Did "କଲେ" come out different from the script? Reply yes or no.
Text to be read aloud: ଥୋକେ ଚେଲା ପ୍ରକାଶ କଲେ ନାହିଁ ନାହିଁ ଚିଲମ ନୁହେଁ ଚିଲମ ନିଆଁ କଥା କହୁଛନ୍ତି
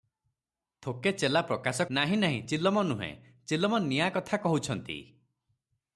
yes